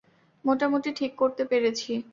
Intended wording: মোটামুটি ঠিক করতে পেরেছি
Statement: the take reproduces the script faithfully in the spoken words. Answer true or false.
true